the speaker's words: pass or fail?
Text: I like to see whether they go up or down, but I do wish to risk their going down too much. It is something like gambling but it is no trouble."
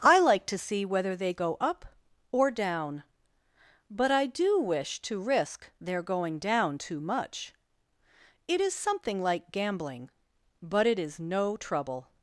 pass